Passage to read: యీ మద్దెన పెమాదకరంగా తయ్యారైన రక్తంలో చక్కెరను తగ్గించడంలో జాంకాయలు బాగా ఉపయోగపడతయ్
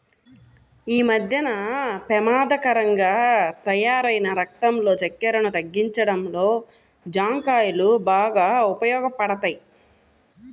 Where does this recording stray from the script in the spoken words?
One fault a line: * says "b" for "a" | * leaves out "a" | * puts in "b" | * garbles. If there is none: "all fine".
all fine